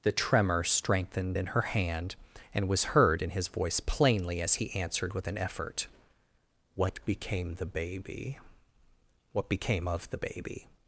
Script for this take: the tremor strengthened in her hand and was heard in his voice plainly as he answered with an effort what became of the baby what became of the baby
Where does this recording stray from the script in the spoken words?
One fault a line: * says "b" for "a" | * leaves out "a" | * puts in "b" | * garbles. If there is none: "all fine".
* leaves out "of"